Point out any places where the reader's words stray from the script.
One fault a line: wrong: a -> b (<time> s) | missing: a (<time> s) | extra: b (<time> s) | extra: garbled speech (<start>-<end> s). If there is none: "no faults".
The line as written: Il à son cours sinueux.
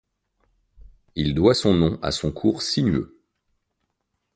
extra: doit son nom (1.4 s)